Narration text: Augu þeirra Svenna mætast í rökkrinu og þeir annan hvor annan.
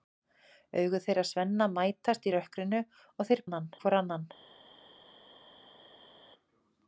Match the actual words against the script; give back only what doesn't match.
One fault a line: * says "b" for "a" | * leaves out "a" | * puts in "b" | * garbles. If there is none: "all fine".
all fine